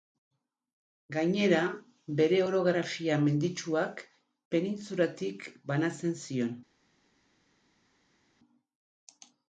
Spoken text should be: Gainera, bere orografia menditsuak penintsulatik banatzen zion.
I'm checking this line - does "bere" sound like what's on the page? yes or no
yes